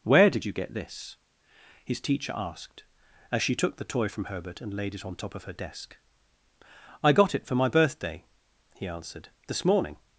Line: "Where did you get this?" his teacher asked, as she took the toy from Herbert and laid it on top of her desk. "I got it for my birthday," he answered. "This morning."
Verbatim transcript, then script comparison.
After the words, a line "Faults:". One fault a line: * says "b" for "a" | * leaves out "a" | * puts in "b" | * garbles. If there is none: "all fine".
"Where did you get this?" his teacher asked, as she took the toy from Herbert and laid it on top of her desk. "I got it for my birthday," he answered. "This morning."
Faults:
all fine